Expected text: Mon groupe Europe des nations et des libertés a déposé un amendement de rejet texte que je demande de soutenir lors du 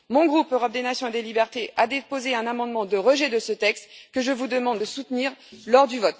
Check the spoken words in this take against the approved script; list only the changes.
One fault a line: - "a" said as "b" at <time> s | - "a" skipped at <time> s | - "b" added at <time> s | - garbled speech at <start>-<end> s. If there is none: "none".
- "de ce" added at 3.3 s
- "vous" added at 4.3 s